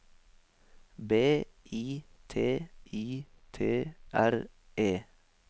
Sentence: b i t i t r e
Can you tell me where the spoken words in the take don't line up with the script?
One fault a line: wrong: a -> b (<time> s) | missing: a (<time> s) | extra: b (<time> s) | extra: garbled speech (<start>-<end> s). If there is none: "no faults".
no faults